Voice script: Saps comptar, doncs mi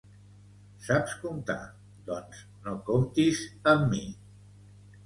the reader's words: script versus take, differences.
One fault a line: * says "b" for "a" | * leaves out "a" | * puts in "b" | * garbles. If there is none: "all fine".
* puts in "no comptis amb"